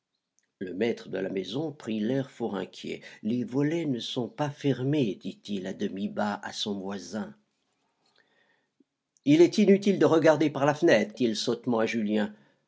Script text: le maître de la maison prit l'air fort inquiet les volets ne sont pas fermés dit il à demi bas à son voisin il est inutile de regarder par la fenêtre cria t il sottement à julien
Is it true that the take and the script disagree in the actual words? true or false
true